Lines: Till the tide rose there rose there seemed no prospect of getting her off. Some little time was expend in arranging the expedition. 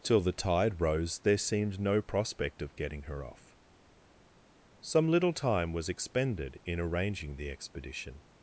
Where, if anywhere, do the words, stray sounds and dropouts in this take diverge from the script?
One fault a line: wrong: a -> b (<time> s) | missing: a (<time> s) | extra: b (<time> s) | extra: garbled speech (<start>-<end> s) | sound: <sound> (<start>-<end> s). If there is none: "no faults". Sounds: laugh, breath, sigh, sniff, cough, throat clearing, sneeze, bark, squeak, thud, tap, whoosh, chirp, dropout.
missing: rose there (1.4 s)
wrong: expend -> expended (5.9 s)